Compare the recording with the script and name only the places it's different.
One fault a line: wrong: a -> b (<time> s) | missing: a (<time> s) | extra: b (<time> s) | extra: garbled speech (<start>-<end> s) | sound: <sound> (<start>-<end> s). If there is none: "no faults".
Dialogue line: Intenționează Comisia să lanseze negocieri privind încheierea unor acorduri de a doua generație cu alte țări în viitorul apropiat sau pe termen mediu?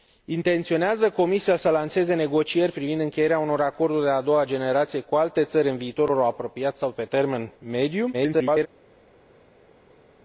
extra: garbled speech (8.1-8.7 s)